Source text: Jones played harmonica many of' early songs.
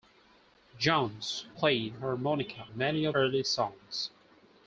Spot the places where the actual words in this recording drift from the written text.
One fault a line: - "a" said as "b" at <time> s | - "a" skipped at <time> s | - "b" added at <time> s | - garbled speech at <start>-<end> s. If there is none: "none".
none